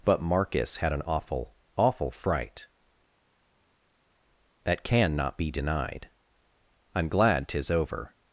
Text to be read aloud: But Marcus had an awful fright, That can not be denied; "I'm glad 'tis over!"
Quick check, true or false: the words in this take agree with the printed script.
false